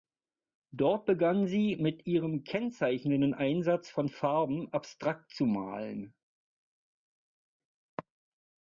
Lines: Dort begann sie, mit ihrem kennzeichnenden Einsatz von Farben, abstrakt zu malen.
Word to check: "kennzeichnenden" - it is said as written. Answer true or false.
true